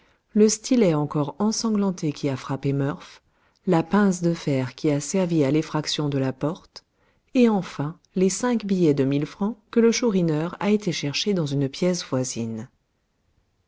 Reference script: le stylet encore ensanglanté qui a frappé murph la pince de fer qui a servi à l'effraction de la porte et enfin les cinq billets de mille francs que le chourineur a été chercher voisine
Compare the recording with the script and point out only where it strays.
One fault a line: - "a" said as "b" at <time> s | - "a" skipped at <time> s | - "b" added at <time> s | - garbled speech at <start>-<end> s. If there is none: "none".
- "dans une pièce" added at 11.3 s